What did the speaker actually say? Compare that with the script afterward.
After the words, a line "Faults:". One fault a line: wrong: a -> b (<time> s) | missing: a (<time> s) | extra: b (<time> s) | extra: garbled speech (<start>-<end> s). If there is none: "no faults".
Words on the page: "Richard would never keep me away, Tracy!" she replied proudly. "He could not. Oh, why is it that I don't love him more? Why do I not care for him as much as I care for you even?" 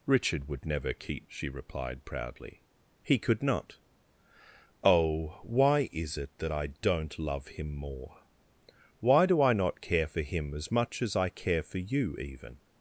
"Richard would never keep!" she replied proudly. "He could not. Oh, why is it that I don't love him more? Why do I not care for him as much as I care for you even?"
Faults:
missing: me away Tracy (1.3 s)